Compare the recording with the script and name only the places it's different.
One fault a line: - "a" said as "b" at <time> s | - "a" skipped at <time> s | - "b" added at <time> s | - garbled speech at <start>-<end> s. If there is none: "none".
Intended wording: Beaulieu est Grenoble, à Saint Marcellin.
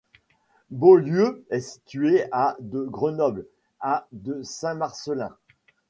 - "situé à de" added at 1.6 s
- "de" added at 4.1 s